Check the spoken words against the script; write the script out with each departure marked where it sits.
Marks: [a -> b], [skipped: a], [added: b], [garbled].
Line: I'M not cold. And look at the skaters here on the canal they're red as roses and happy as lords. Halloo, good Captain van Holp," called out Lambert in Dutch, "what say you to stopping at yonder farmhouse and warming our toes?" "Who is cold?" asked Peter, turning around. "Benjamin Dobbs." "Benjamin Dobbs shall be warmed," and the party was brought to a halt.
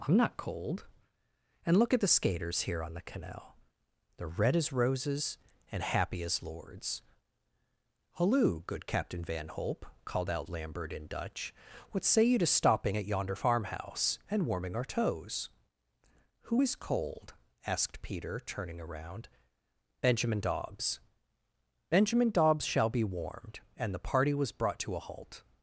I'M not cold. And look at the skaters here on the canal they're red as roses and happy as lords. Halloo, good Captain van Holp," called out Lambert in Dutch, "what say you to stopping at yonder farmhouse and warming our toes?" "Who is cold?" asked Peter, turning around. "Benjamin Dobbs." "Benjamin Dobbs shall be warmed," and the party was brought to a halt.